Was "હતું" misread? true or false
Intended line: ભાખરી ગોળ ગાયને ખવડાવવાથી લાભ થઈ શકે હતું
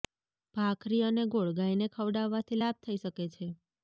true